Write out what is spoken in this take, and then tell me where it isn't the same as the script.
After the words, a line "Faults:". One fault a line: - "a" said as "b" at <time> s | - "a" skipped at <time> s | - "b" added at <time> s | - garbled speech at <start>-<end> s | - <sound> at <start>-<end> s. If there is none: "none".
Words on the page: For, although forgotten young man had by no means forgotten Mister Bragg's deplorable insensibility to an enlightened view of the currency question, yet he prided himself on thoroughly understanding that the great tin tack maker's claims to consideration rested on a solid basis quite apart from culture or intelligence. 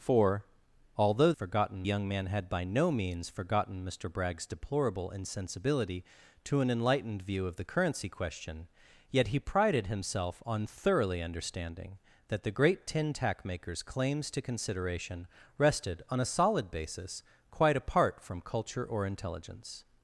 For, although forgotten young man had by no means forgotten Mister Bragg's deplorable insensibility to an enlightened view of the currency question, yet he prided himself on thoroughly understanding that the great tin tack maker's claims to consideration rested on a solid basis quite apart from culture or intelligence.
Faults:
none